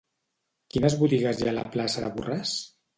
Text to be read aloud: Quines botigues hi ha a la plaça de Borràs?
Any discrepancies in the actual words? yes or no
no